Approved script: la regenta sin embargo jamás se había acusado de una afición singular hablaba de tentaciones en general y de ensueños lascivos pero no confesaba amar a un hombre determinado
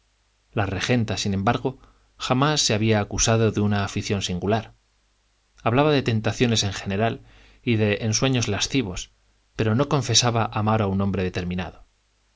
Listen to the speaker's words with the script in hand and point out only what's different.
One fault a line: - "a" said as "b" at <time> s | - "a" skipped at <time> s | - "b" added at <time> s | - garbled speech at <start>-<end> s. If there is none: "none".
none